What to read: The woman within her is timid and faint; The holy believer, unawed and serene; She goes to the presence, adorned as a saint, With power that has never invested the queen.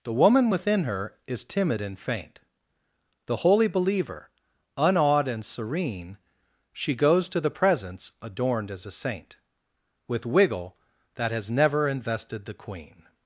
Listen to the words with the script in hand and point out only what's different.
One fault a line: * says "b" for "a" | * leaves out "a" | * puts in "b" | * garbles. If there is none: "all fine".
* says "wiggle" for "power"